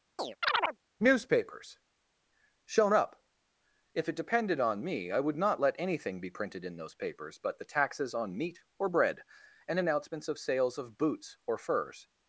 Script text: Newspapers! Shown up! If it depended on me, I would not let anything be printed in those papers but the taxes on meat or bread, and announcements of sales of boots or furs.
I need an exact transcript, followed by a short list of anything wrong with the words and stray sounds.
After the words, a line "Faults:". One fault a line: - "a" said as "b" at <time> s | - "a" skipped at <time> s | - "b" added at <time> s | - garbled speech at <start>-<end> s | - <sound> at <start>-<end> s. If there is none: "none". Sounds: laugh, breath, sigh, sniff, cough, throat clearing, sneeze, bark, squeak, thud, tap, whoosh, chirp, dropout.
Newspapers! Shown up! If it depended on me, I would not let anything be printed in those papers but the taxes on meat or bread, and announcements of sales of boots or furs.
Faults:
- chirp at 0.2-0.8 s